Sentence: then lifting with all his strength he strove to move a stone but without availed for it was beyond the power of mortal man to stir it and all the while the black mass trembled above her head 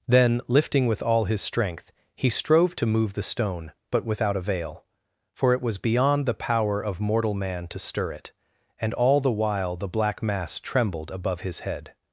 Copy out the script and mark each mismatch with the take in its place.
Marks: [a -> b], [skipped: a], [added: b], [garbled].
then lifting with all his strength he strove to move [a -> the] stone but without [availed -> avail] for it was beyond the power of mortal man to stir it and all the while the black mass trembled above [her -> his] head